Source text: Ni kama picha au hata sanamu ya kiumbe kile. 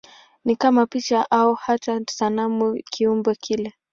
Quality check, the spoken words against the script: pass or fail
fail